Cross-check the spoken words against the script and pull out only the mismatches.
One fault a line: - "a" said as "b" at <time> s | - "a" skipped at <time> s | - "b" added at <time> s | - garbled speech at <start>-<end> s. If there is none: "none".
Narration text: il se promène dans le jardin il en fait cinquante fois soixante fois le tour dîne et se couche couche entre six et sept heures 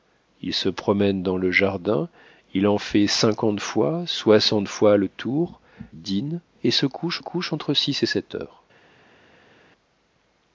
none